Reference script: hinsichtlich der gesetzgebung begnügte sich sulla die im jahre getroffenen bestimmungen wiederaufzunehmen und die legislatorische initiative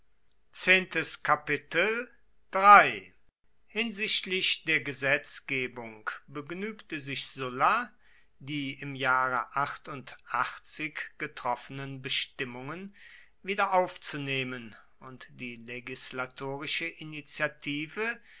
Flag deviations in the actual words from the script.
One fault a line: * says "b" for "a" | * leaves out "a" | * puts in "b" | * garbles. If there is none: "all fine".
all fine